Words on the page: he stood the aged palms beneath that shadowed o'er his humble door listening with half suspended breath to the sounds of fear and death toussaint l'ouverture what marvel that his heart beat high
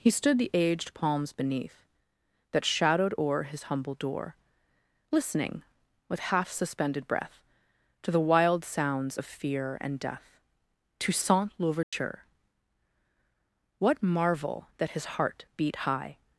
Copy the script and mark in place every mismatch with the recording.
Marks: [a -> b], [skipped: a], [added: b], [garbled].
he stood the aged palms beneath that shadowed o'er his humble door listening with half suspended breath to the [added: wild] sounds of fear and death toussaint l'ouverture what marvel that his heart beat high